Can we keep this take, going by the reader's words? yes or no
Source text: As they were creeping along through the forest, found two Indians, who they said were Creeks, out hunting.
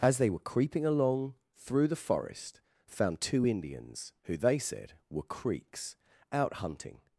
yes